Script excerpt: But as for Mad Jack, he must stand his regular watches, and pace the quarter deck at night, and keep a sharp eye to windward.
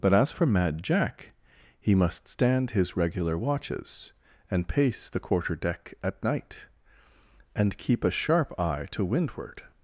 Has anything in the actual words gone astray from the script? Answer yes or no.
no